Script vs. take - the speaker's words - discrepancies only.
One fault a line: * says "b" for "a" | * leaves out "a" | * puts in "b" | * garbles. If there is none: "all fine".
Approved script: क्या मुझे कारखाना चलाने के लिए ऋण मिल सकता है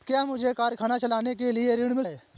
* leaves out "सकता"